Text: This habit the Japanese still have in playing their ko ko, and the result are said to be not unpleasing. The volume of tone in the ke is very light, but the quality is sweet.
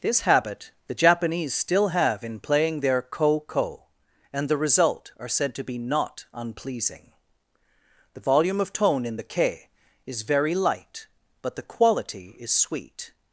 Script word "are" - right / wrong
right